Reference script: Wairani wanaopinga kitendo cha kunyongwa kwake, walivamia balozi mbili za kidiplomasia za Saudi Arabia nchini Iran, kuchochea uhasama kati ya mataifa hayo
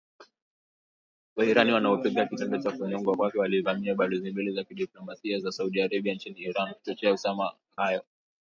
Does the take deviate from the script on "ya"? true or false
true